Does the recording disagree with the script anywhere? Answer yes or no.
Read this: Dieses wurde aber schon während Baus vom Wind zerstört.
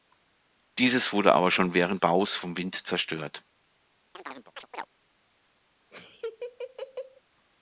no